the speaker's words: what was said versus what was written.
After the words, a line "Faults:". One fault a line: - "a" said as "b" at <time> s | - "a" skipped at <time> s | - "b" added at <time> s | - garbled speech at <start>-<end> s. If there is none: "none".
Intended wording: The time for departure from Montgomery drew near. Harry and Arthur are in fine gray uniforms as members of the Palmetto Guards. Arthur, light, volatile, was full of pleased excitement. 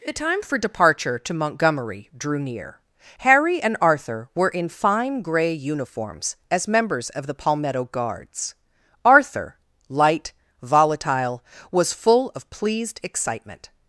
The time for departure to Montgomery drew near. Harry and Arthur were in fine gray uniforms as members of the Palmetto Guards. Arthur, light, volatile, was full of pleased excitement.
Faults:
- "from" said as "to" at 1.2 s
- "are" said as "were" at 4.3 s